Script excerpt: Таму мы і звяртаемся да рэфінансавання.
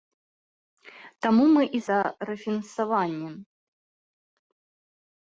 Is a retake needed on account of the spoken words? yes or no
yes